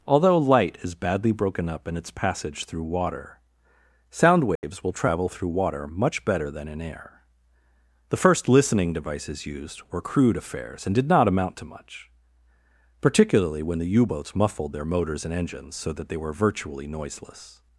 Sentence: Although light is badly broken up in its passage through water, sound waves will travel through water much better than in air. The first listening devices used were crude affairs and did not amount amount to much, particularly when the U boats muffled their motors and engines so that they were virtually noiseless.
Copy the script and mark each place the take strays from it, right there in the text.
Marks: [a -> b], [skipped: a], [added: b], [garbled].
Although light is badly broken up in its passage through water, sound waves will travel through water much better than in air. The first listening devices used were crude affairs and did not amount [skipped: amount] to much, particularly when the U boats muffled their motors and engines so that they were virtually noiseless.